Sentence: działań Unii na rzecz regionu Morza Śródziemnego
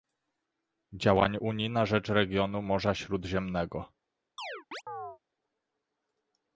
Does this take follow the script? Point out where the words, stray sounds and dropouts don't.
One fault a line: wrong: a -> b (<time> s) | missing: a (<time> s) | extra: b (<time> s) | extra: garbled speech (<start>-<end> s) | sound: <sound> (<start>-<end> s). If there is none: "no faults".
sound: chirp (4.4-5.2 s)